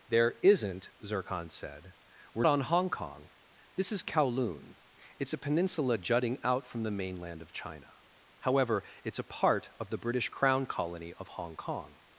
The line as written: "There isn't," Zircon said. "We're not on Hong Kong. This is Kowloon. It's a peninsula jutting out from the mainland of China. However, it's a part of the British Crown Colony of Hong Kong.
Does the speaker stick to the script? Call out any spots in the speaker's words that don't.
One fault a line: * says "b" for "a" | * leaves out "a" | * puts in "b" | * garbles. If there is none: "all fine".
* leaves out "not"